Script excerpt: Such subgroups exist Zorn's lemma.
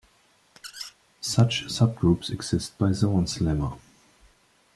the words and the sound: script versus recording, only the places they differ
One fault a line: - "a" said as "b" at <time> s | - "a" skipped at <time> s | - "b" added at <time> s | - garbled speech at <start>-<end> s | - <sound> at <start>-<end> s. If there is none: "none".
- squeak at 0.6-0.9 s
- "by" added at 2.8 s